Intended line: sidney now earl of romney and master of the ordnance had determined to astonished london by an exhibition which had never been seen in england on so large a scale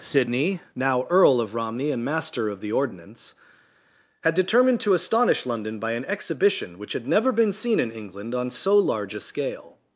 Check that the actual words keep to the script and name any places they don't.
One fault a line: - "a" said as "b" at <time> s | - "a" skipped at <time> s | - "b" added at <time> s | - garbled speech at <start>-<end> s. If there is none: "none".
- "astonished" said as "astonish" at 4.9 s